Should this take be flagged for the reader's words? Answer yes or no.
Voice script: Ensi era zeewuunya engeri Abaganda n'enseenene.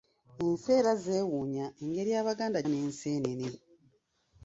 no